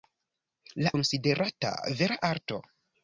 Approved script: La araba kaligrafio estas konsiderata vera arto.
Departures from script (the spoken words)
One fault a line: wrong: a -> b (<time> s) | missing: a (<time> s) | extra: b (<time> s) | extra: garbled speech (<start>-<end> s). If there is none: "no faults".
missing: araba kaligrafio estas (0.9 s)